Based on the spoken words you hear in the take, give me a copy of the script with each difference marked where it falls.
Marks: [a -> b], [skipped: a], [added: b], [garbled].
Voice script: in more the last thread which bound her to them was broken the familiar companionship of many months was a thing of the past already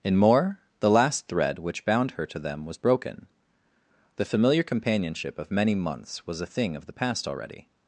in more the last thread which bound her to them was broken the familiar companionship of many months was a thing of the past already